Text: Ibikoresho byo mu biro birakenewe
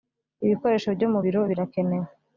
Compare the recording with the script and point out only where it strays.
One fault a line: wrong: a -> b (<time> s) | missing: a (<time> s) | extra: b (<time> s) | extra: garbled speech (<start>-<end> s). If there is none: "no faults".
no faults